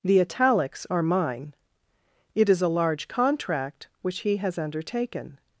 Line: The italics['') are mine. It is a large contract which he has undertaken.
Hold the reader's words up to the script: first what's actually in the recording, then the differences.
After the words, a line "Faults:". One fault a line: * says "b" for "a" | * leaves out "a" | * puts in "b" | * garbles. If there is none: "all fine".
The italics['') are mine. It is a large contract which he has undertaken.
Faults:
all fine